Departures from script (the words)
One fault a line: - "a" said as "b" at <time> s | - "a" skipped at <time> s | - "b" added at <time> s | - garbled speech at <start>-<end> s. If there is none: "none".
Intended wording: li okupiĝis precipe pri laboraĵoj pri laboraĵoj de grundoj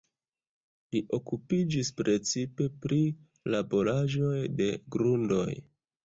- "pri laboraĵoj" skipped at 4.3 s